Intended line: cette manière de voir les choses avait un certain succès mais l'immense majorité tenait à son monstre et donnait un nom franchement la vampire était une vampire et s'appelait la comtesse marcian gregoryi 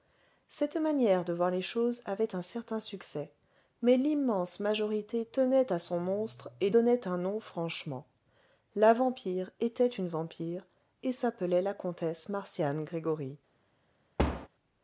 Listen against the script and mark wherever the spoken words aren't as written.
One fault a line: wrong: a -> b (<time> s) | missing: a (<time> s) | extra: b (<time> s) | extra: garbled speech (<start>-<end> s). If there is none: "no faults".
no faults